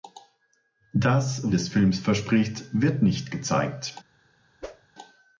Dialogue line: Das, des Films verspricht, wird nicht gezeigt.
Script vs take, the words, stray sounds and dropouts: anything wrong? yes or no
yes